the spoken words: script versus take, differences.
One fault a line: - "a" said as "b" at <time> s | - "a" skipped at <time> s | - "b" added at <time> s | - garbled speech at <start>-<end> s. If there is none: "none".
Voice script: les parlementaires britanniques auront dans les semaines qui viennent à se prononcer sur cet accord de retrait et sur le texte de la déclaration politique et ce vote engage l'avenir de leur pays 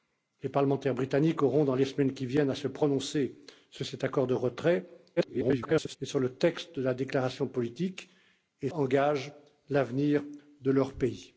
- garbled speech at 5.2-6.0 s
- "ce vote" skipped at 8.7 s